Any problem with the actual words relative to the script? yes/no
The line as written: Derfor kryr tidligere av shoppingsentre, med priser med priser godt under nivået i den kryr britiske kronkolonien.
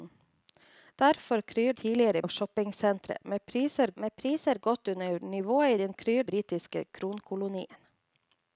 no